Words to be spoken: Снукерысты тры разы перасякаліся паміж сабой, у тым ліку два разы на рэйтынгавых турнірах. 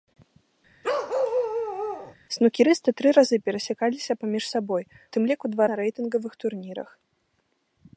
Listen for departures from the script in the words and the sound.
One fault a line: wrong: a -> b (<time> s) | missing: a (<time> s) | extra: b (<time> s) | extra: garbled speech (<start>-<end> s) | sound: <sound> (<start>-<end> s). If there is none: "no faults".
sound: bark (0.8-2.2 s)
missing: у (4.8 s)
missing: разы (5.7 s)